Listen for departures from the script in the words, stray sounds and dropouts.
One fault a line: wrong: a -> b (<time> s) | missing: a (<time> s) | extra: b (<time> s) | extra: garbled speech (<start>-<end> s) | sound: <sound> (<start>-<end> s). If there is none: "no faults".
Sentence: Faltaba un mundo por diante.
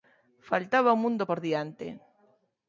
no faults